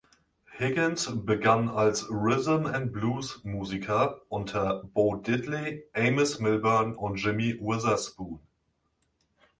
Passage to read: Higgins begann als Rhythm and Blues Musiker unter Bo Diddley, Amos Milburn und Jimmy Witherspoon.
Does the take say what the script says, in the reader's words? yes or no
yes